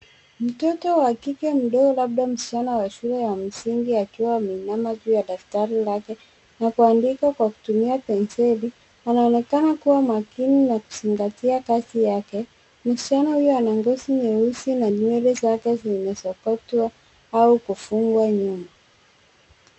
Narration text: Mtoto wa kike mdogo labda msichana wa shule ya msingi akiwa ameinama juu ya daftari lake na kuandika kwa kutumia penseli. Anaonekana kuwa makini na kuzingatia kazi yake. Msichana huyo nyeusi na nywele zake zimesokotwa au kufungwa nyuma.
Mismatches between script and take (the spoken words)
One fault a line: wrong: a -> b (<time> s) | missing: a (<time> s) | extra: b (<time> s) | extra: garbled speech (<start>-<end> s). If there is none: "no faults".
extra: ana ngozi (13.6 s)